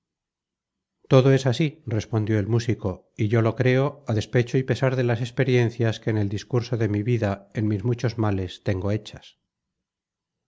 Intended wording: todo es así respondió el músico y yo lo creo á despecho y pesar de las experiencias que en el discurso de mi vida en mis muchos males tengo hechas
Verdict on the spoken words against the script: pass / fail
pass